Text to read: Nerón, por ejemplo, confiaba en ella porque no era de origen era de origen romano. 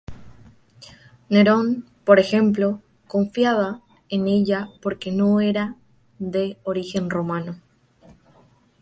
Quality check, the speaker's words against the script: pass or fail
fail